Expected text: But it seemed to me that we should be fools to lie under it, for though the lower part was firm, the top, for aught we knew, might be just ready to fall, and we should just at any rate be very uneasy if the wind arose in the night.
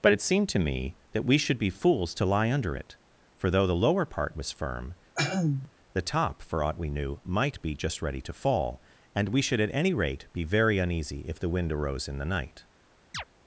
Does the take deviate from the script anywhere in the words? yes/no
yes